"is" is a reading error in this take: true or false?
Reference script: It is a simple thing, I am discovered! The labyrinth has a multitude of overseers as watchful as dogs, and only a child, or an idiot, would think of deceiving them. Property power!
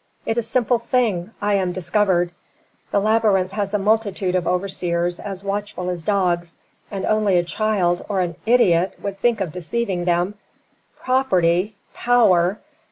true